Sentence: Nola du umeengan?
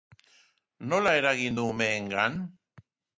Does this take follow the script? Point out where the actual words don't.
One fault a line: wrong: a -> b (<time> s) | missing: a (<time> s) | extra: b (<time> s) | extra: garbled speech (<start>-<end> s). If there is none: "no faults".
extra: eragin (1.2 s)